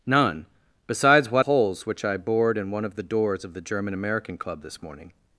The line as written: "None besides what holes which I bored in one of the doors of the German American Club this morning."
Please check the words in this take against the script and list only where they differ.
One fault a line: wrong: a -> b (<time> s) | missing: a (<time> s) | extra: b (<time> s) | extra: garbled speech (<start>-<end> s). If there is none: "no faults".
no faults